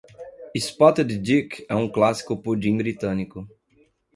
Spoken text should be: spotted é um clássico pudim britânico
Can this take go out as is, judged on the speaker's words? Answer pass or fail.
fail